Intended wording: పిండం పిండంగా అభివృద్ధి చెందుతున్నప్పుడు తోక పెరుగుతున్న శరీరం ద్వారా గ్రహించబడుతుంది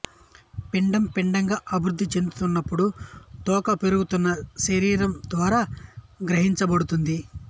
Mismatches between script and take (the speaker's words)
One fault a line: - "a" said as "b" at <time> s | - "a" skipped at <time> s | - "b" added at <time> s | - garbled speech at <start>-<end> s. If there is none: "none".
none